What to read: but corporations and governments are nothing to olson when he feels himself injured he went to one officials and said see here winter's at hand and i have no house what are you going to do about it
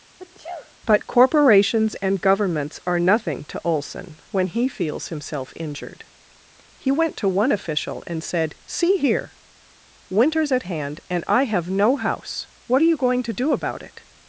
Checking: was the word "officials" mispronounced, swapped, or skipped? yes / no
yes